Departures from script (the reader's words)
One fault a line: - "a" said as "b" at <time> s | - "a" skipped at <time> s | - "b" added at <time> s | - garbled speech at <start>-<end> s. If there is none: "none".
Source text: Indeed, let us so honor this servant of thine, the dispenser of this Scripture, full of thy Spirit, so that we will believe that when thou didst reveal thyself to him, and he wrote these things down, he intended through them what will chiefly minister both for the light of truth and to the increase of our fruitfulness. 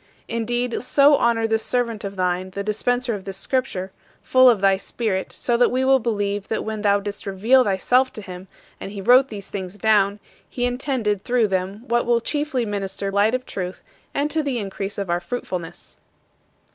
- "let" skipped at 0.7 s
- "both for the" skipped at 13.1 s